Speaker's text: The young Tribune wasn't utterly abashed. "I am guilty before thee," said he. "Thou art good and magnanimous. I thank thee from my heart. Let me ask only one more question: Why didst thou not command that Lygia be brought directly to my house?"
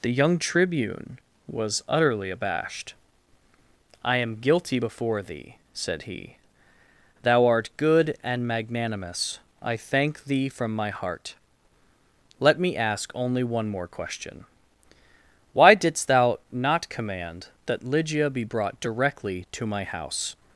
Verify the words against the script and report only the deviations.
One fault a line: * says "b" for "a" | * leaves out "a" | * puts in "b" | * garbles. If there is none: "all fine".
* says "was" for "wasn't"